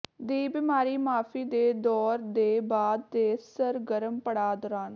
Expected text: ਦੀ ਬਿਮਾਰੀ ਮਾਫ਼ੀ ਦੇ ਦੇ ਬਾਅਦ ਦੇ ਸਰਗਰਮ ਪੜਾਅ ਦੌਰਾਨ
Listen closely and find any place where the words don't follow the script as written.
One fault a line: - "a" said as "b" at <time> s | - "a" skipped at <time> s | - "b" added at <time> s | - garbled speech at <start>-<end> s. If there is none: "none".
- "ਦੌਰ" added at 1.8 s